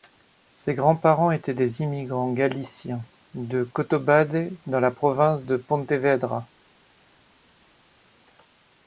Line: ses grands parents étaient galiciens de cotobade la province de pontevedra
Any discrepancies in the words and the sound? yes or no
yes